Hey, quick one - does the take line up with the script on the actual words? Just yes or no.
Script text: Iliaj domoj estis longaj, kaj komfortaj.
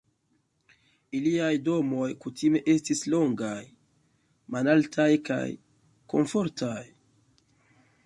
no